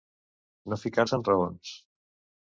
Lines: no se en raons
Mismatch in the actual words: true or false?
true